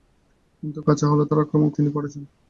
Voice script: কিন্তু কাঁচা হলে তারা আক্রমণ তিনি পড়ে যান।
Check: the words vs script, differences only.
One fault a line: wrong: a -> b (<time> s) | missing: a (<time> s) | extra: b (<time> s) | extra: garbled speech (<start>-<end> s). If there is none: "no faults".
no faults